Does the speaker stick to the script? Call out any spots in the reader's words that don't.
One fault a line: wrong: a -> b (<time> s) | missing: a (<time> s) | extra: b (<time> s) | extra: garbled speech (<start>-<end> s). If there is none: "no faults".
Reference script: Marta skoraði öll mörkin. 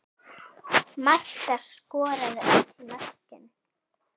no faults